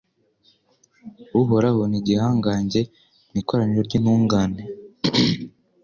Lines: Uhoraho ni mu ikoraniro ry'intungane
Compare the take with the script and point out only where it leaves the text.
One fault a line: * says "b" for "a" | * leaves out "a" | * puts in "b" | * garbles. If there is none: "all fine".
* puts in "igihangange"